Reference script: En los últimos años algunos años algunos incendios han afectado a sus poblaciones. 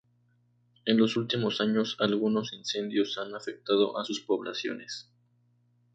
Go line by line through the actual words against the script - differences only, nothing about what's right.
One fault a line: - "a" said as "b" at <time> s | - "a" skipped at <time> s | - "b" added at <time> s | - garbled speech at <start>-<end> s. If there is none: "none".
- "años algunos" skipped at 2.5 s